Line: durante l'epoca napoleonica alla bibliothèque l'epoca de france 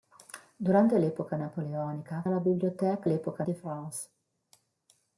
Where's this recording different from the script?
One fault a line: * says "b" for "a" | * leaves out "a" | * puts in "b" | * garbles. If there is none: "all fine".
all fine